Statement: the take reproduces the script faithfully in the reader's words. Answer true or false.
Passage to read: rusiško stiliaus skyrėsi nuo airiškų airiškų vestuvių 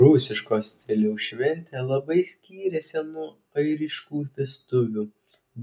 false